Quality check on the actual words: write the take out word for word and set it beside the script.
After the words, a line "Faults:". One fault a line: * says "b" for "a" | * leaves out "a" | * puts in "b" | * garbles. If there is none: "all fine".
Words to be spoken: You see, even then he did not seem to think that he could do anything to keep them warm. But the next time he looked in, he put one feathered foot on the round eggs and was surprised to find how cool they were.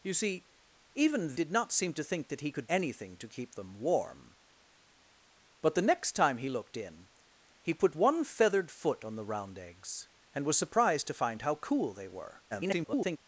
You see, even did not seem to think that he could anything to keep them warm. But the next time he looked in, he put one feathered foot on the round eggs and was surprised to find how cool they were. [garbled]
Faults:
* leaves out "then he"
* leaves out "do"
* garbles